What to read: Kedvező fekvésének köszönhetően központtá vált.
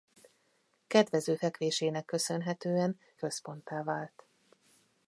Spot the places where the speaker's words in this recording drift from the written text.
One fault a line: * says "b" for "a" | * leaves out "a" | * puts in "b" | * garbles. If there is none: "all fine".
all fine